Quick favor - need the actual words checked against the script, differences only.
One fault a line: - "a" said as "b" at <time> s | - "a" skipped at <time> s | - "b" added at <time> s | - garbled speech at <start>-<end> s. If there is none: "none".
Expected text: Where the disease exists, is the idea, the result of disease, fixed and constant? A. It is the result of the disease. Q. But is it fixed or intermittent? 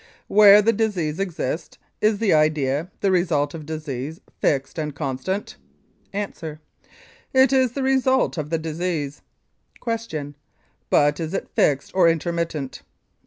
none